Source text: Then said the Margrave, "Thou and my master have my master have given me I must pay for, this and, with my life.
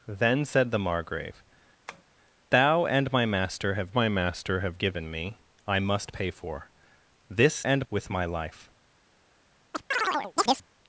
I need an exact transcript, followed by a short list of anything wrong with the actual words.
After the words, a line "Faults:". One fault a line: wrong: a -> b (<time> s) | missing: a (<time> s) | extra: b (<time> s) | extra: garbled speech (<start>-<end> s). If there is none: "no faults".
Then said the Margrave, "Thou and my master have my master have given me I must pay for, this and, with my life.
Faults:
no faults